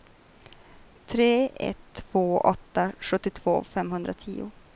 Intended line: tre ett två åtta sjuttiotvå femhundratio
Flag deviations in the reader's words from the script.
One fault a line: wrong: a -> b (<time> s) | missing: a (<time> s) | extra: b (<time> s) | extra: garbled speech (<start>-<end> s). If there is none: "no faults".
no faults